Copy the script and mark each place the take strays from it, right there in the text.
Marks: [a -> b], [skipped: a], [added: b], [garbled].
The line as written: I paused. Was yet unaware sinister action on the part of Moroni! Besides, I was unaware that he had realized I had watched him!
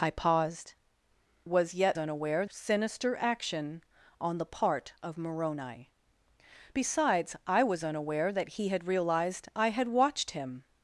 I paused. Was yet unaware sinister action on the part of Moroni! Besides, I was unaware that he had realized I had watched him!